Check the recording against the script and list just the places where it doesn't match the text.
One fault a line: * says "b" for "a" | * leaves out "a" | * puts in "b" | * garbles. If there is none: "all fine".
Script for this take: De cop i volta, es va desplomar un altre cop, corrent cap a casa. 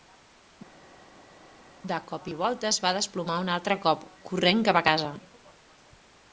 all fine